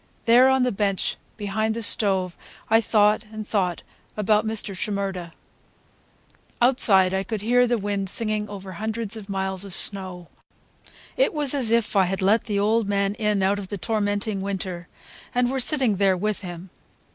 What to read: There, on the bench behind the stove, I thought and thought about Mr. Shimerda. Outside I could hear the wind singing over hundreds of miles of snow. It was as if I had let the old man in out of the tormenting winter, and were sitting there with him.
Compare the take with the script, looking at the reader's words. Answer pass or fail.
pass